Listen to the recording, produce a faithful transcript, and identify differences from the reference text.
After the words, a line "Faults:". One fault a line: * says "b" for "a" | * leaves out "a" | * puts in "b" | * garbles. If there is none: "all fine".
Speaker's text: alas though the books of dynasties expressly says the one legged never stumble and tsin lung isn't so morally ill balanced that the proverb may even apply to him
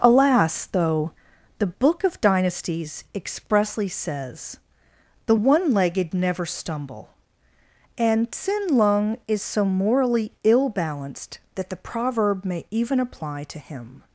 alas though the book of dynasties expressly says the one legged never stumble and tsin lung is so morally ill balanced that the proverb may even apply to him
Faults:
* says "book" for "books"
* says "is" for "isn't"